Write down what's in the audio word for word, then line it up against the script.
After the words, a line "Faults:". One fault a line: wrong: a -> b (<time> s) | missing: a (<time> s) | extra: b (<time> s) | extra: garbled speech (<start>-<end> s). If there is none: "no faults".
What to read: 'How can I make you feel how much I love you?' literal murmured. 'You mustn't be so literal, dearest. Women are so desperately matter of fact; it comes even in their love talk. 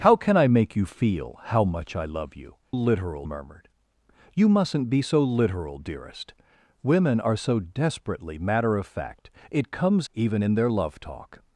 'How can I make you feel how much I love you?' literal murmured. 'You mustn't be so literal, dearest. Women are so desperately matter of fact; it comes even in their love talk.
Faults:
no faults